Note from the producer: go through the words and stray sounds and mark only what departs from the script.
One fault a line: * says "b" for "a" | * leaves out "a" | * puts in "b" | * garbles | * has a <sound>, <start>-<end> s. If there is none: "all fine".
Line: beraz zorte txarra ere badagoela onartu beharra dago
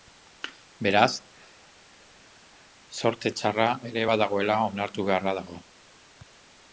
all fine